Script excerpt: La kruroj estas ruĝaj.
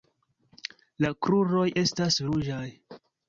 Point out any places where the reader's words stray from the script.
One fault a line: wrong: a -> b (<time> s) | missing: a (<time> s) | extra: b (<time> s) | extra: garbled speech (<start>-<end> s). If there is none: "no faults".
no faults